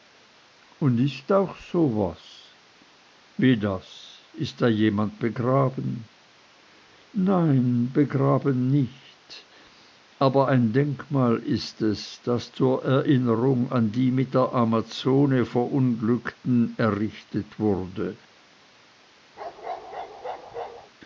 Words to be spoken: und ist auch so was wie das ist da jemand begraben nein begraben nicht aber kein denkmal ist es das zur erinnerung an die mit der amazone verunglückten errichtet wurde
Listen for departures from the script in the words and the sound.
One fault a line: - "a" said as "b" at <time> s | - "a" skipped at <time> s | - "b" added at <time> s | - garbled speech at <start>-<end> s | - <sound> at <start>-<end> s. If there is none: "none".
- "kein" said as "ein" at 10.5 s
- bark at 19.4-20.9 s